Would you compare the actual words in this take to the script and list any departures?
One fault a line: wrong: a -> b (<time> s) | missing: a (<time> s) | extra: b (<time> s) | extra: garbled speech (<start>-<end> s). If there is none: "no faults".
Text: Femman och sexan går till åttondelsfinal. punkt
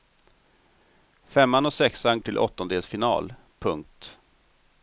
missing: går (2.2 s)